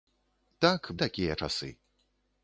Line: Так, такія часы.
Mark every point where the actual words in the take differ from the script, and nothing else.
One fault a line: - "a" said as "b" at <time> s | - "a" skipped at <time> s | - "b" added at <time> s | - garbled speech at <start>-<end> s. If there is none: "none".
none